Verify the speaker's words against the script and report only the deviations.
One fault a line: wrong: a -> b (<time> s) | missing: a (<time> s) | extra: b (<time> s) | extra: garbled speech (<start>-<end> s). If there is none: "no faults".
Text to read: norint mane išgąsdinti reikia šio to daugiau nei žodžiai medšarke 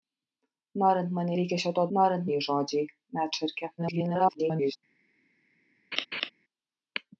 missing: išgąsdinti (1.4 s)
wrong: daugiau -> norint (2.0 s)
extra: garbled speech (3.8-4.8 s)